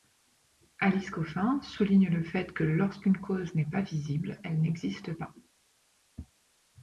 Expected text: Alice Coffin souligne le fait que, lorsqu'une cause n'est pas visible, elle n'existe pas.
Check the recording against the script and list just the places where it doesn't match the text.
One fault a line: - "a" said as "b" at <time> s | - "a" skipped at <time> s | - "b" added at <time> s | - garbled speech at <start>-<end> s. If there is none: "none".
none